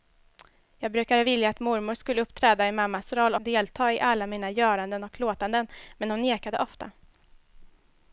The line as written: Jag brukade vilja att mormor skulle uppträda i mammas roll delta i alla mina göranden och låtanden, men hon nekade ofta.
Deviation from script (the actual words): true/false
false